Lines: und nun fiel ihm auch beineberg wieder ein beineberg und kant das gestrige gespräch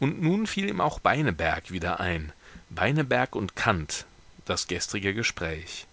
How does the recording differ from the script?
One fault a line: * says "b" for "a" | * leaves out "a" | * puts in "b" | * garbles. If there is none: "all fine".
all fine